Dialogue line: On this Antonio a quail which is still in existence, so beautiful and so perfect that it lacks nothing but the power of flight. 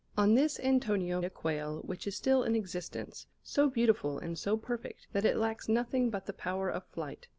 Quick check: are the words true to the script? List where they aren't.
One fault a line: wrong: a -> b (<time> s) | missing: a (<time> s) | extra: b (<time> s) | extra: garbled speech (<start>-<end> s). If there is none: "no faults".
no faults